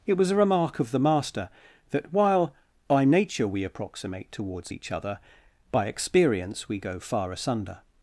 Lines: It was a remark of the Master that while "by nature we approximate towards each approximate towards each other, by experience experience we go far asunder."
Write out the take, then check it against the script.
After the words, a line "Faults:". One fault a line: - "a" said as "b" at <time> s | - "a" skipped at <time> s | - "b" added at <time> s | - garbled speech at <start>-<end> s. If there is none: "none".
It was a remark of the Master that while "by nature we approximate towards each other, by experience we go far asunder."
Faults:
- "approximate towards each" skipped at 4.9 s
- "experience" skipped at 6.7 s